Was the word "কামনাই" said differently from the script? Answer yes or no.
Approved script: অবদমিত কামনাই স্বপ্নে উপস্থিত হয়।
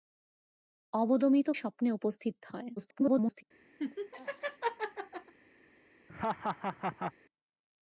yes